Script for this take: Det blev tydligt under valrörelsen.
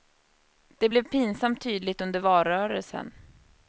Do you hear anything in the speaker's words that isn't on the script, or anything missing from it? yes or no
yes